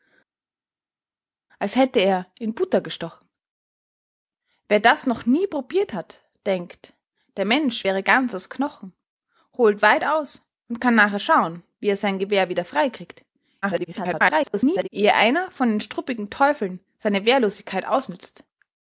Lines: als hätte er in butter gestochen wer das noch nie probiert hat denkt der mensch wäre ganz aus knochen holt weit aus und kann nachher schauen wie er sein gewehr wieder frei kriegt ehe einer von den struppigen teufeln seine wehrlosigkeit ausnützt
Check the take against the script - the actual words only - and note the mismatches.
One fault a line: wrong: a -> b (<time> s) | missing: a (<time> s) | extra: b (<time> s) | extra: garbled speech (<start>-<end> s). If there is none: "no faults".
extra: garbled speech (13.6-14.9 s)